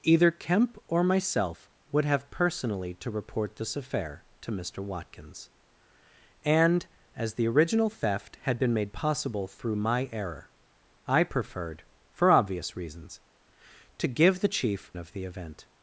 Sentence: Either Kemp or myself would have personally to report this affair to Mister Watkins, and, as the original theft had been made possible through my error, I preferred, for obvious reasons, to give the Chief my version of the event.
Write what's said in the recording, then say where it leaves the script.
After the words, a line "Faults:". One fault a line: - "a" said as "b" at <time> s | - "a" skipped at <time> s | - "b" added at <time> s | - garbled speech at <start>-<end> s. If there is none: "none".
Either Kemp or myself would have personally to report this affair to Mister Watkins, and, as the original theft had been made possible through my error, I preferred, for obvious reasons, to give the Chief of the event.
Faults:
- "my version" skipped at 14.9 s